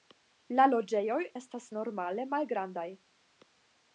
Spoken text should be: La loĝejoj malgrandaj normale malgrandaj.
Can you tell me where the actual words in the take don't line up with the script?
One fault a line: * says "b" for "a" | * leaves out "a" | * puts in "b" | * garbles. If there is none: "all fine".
* says "estas" for "malgrandaj"